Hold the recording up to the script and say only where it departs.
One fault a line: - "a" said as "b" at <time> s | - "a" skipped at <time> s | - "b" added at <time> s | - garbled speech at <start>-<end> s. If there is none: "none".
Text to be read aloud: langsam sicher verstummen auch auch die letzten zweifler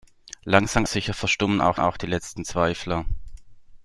none